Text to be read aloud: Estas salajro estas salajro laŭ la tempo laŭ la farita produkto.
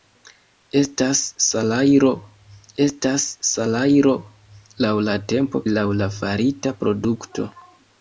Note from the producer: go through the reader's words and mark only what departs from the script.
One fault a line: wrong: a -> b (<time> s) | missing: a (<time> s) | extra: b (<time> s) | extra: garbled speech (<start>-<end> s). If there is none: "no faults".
no faults